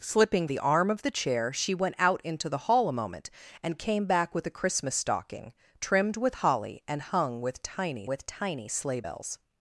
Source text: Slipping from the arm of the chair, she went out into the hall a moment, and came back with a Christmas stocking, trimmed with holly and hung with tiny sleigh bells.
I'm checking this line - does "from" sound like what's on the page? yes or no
no